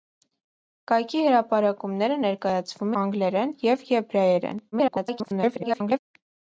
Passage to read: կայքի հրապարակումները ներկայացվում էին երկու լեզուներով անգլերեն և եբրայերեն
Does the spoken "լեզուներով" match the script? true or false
false